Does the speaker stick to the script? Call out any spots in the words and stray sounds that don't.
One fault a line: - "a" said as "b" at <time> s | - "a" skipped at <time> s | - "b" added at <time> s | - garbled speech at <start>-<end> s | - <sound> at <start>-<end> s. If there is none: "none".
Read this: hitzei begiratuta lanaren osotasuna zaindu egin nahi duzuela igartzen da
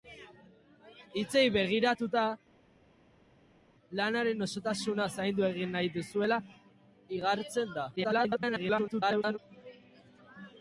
- garbled speech at 8.0-9.4 s